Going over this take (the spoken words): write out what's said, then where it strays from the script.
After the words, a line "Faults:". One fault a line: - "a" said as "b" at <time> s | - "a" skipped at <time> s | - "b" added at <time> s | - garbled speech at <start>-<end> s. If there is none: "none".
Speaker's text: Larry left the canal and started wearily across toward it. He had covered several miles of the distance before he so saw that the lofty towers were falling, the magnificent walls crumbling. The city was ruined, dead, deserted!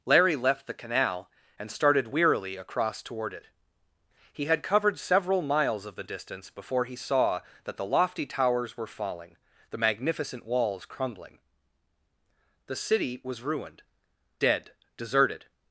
Larry left the canal and started wearily across toward it. He had covered several miles of the distance before he saw that the lofty towers were falling, the magnificent walls crumbling. The city was ruined, dead, deserted!
Faults:
- "so" skipped at 6.9 s